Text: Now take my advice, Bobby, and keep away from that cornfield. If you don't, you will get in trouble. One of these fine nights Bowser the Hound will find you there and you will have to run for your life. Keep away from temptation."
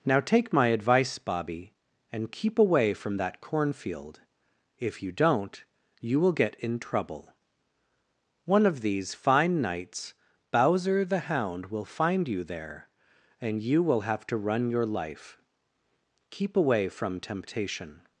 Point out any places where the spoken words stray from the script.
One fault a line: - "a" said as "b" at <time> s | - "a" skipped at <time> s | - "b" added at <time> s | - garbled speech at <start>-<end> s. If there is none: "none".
- "for" skipped at 14.7 s